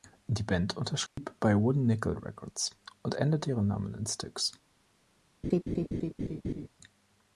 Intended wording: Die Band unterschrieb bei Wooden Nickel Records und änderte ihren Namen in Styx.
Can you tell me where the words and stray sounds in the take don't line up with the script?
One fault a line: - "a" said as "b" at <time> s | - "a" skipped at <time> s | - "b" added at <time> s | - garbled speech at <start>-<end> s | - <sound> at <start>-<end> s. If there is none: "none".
- dropout at 1.1-1.2 s
- laugh at 5.4-6.7 s